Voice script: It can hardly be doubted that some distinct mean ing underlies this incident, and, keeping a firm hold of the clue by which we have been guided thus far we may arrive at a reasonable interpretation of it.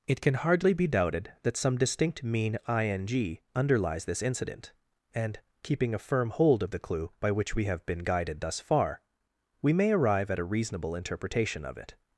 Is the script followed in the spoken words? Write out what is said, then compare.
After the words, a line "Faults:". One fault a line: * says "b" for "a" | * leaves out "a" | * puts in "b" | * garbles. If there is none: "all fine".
It can hardly be doubted that some distinct mean ing underlies this incident, and, keeping a firm hold of the clue by which we have been guided thus far we may arrive at a reasonable interpretation of it.
Faults:
all fine